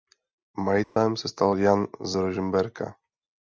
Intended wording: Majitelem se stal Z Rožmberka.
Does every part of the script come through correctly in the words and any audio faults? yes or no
no